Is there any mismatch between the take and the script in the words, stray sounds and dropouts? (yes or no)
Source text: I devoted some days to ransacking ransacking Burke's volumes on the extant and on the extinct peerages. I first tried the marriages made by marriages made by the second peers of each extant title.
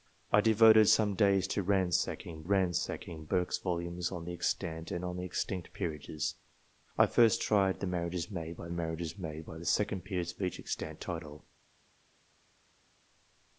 no